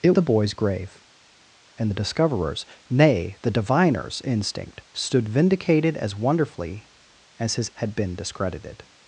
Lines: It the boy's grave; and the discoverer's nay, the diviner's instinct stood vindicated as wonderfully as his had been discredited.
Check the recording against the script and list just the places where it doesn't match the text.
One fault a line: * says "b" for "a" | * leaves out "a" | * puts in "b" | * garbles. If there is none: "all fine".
all fine